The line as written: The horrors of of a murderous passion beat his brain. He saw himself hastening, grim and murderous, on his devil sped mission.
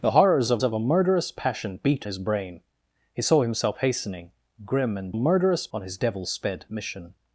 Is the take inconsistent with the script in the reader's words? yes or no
no